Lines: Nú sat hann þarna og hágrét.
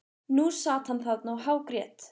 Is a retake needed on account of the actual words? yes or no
no